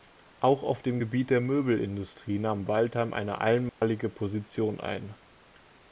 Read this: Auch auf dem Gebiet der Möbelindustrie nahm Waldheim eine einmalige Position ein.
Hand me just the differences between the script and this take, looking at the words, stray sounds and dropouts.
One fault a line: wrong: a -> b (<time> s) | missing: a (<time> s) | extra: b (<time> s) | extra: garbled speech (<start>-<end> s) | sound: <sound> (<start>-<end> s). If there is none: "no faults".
sound: dropout (3.7-3.8 s)